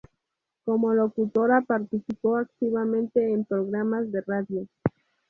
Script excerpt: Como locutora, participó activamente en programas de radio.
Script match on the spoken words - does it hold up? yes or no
yes